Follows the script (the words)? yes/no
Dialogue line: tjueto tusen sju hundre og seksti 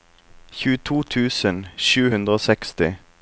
yes